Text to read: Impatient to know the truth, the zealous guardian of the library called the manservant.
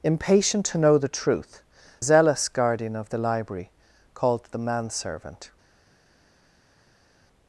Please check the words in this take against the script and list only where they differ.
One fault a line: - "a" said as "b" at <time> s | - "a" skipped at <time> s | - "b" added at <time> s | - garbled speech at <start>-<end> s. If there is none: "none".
- "the" skipped at 1.6 s